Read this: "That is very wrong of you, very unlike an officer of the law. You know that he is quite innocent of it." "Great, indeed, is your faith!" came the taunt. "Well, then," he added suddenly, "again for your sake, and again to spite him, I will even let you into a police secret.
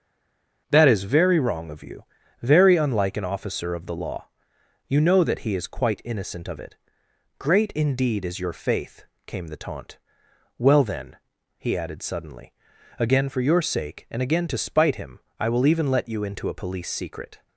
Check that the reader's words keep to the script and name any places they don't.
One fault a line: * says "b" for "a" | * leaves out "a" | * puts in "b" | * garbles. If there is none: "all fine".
all fine